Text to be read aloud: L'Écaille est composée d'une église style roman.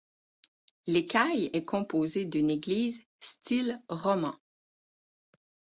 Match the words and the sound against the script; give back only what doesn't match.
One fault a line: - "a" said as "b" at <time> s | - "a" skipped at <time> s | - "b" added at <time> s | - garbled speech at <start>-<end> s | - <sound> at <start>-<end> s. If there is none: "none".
none